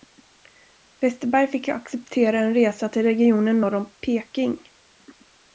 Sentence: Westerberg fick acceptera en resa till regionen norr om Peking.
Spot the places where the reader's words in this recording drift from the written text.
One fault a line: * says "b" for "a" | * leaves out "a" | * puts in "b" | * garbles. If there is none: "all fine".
all fine